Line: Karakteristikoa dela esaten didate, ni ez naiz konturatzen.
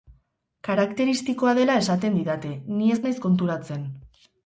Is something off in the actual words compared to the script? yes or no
no